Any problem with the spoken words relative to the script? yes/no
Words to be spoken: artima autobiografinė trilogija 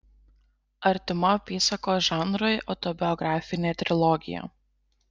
yes